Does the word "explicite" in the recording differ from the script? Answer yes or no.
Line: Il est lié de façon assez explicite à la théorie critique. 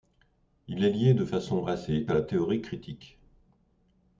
yes